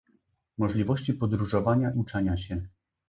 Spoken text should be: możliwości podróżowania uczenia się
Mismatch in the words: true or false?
false